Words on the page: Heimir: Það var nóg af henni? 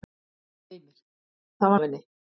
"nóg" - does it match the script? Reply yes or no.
no